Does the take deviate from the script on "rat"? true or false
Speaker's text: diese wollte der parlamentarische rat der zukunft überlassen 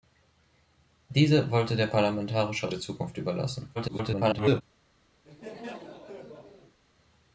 true